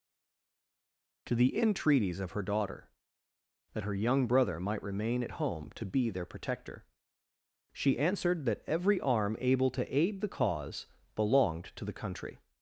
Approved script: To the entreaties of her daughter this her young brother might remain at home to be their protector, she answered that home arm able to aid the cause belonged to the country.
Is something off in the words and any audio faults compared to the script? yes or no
yes